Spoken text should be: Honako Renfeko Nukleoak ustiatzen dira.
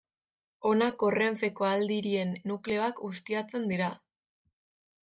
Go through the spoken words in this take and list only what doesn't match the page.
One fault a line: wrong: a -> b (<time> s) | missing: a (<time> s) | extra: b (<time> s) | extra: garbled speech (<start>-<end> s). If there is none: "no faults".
extra: Aldirien (1.7 s)